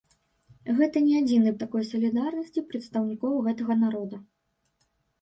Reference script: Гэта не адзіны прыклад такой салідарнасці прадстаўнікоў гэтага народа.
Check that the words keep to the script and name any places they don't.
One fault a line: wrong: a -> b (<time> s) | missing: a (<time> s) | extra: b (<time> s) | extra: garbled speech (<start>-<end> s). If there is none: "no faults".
missing: прыклад (1.5 s)